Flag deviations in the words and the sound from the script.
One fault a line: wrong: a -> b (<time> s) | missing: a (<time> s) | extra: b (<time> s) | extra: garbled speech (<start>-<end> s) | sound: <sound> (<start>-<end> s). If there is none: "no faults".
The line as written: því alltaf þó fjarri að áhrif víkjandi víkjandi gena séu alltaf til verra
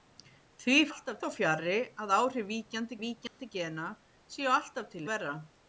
sound: dropout (3.3-3.4 s)